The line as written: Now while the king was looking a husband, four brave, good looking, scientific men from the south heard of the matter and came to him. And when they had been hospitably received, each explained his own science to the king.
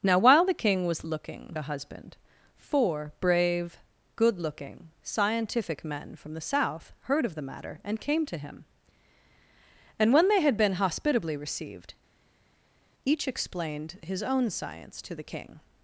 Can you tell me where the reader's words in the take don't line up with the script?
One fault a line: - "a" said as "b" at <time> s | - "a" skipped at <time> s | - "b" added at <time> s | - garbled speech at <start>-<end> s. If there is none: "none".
none